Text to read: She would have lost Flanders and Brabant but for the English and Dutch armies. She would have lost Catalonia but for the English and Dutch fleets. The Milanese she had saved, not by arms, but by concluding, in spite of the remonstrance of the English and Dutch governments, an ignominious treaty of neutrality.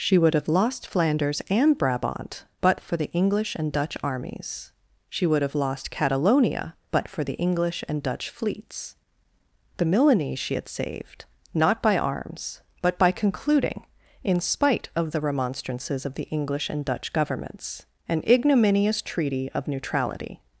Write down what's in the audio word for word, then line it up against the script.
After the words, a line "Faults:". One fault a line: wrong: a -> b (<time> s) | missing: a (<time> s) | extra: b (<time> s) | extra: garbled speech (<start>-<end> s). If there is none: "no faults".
She would have lost Flanders and Brabant but for the English and Dutch armies. She would have lost Catalonia but for the English and Dutch fleets. The Milanese she had saved, not by arms, but by concluding, in spite of the remonstrances of the English and Dutch governments, an ignominious treaty of neutrality.
Faults:
wrong: remonstrance -> remonstrances (15.2 s)